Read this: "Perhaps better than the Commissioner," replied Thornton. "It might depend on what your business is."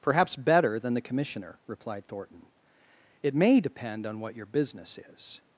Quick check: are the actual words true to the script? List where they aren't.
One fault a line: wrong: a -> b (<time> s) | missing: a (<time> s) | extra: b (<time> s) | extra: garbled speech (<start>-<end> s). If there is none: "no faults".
wrong: might -> may (3.3 s)